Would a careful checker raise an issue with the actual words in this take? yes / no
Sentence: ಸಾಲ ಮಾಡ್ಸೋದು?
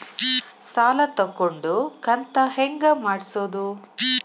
yes